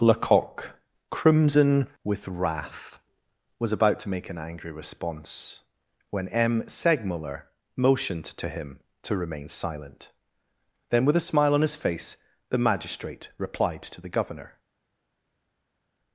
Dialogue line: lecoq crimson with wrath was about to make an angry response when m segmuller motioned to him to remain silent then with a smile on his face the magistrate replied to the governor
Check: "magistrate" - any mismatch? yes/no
no